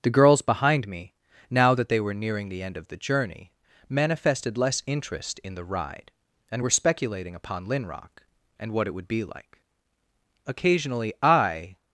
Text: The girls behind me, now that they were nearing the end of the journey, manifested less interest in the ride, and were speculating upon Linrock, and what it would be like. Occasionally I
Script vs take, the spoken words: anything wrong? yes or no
no